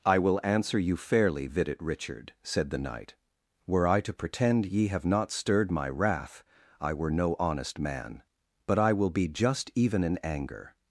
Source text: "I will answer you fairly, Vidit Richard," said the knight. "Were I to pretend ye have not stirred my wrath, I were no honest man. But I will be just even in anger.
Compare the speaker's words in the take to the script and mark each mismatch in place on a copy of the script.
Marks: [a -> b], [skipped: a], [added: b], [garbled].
"I will answer you fairly, Vidit Richard," said the knight. "Were I to pretend ye have not stirred my wrath, I were no honest man. But I will be just even in anger.